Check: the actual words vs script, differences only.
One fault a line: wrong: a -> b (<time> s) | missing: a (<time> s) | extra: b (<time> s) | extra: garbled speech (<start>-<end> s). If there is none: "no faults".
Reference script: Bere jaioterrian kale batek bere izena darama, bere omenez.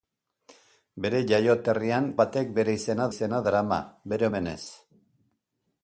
missing: kale (2.1 s)
extra: izena (3.1 s)